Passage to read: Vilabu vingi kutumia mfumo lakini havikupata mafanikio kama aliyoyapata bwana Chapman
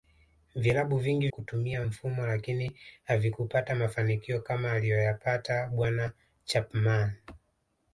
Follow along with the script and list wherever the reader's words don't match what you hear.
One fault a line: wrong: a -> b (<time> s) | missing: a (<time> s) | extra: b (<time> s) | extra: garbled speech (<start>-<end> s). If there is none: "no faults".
no faults